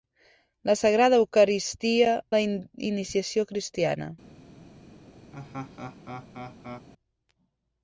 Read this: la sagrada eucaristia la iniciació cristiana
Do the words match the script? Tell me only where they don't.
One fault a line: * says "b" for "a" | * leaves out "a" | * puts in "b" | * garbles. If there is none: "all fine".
all fine